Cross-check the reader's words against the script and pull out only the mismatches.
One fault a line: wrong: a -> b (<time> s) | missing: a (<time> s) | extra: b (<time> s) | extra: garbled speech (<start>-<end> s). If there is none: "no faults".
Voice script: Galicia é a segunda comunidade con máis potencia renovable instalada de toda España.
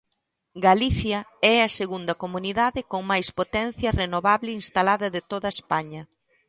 no faults